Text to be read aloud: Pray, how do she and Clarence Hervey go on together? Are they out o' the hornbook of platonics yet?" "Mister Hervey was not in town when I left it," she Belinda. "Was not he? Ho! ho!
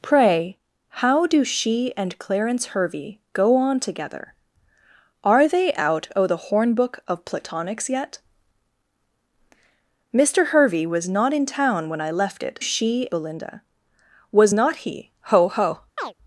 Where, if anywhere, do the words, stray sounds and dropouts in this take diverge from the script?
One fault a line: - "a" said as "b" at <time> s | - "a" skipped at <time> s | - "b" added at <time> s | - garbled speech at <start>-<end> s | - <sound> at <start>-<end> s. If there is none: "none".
- chirp at 16.0-16.1 s